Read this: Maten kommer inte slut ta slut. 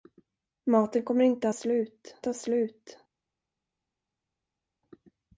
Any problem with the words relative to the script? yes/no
no